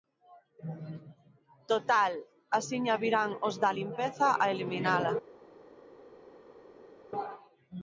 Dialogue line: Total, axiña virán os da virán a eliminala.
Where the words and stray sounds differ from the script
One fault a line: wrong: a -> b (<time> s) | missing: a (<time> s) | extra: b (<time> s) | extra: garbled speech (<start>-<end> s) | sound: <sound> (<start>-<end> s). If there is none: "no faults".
wrong: virán -> limpeza (3.8 s)